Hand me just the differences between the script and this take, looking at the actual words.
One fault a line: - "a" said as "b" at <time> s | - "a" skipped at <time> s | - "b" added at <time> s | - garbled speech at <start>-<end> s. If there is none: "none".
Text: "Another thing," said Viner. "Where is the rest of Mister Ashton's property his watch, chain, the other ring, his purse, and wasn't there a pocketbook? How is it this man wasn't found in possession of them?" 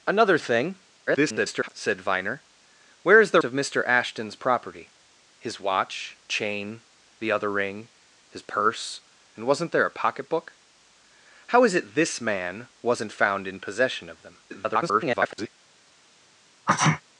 - garbled speech at 1.1-1.7 s
- "rest" skipped at 3.4 s
- garbled speech at 14.5-15.5 s